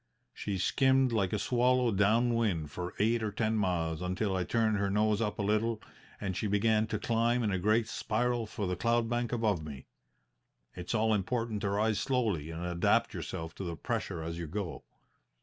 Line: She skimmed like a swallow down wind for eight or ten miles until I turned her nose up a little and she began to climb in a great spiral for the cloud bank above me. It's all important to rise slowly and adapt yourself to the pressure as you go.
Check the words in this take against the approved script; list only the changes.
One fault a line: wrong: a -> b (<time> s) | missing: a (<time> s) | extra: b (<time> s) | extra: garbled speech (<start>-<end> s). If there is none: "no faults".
no faults